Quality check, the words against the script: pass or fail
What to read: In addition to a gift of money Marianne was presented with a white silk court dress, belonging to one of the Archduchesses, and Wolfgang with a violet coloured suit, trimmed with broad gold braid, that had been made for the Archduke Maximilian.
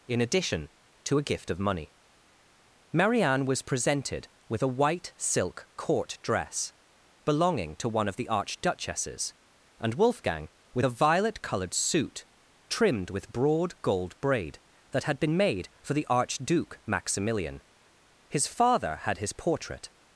fail